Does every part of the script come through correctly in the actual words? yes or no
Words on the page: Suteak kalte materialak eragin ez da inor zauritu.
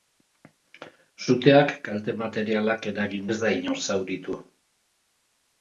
yes